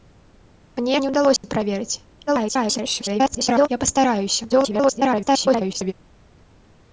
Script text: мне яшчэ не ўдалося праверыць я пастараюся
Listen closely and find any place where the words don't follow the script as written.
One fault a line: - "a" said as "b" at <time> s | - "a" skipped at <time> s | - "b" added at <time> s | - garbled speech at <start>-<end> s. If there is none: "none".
- "яшчэ" skipped at 0.9 s
- garbled speech at 2.3-3.7 s
- garbled speech at 4.5-5.9 s